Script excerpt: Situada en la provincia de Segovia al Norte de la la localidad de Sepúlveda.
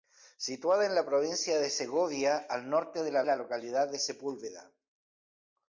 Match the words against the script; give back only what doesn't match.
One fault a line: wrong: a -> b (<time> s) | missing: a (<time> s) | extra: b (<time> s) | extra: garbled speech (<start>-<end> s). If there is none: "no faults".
no faults